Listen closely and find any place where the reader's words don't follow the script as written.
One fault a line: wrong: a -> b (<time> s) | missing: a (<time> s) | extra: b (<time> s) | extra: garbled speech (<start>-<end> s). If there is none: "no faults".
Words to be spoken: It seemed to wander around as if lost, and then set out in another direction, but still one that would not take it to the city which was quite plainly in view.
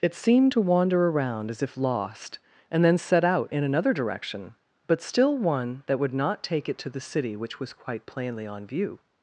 wrong: in -> on (8.5 s)